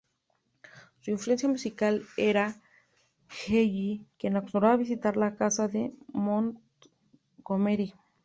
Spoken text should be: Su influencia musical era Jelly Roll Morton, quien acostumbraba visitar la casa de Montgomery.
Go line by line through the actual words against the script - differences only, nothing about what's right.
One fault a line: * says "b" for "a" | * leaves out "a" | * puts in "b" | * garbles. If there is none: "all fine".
* leaves out "Roll Morton"